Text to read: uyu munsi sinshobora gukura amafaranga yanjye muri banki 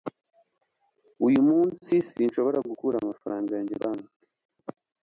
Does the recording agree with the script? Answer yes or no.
no